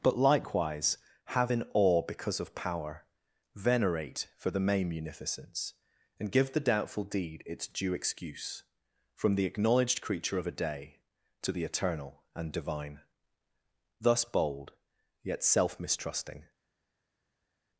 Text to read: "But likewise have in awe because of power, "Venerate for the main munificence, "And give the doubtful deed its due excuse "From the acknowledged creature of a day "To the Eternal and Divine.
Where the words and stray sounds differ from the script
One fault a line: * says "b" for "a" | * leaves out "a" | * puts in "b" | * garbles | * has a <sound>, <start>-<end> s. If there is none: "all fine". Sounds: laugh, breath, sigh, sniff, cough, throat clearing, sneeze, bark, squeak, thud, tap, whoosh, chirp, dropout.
* puts in "Thus bold Yet self mistrusting"